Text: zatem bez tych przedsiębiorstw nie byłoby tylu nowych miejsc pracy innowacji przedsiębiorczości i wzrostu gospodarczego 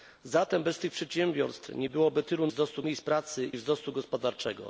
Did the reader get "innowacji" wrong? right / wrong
wrong